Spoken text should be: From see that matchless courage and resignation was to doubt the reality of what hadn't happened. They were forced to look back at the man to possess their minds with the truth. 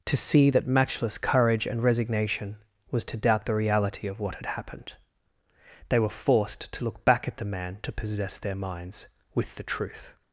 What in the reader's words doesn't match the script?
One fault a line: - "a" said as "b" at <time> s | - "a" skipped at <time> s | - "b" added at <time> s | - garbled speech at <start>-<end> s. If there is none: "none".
- "From" said as "To" at 0.1 s
- "hadn't" said as "had" at 4.3 s